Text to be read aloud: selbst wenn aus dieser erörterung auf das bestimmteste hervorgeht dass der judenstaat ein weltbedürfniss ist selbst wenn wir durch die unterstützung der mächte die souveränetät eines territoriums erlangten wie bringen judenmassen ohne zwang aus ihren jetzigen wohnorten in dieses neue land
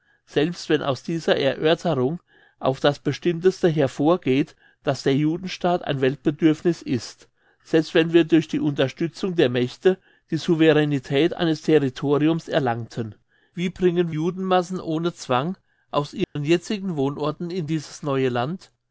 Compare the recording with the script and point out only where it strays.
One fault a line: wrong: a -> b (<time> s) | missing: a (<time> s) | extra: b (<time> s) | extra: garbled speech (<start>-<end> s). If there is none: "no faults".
no faults